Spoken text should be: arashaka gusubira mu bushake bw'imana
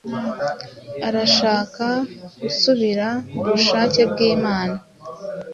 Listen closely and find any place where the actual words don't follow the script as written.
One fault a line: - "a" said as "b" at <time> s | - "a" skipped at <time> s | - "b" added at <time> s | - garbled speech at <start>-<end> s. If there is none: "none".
none